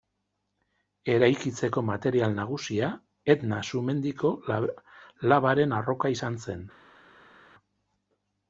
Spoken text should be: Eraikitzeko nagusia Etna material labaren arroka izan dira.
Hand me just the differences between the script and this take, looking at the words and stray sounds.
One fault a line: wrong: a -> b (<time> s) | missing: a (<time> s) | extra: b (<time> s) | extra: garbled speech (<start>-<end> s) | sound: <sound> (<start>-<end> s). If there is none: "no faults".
extra: material (1.9 s)
wrong: material -> sumendiko (3.7 s)
wrong: dira -> zen (6.5 s)